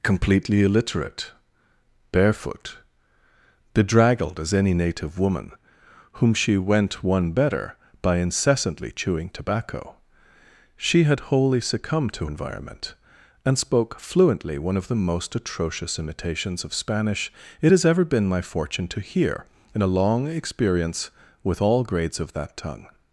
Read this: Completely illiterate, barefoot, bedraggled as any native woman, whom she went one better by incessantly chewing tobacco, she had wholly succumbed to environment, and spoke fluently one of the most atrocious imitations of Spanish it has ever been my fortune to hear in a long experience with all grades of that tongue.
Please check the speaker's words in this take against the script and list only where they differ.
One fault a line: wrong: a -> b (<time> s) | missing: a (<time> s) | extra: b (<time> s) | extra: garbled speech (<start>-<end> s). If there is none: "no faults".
no faults